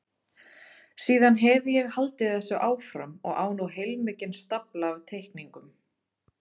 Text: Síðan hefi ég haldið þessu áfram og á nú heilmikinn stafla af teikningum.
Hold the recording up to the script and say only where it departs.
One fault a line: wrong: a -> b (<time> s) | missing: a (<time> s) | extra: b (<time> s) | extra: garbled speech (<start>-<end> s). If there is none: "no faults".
no faults